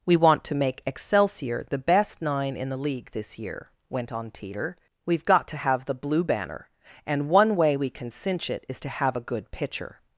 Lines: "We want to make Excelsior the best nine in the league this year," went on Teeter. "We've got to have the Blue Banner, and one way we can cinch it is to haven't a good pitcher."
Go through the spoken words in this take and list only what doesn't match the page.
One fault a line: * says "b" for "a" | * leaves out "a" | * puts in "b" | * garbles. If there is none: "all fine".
* says "have" for "haven't"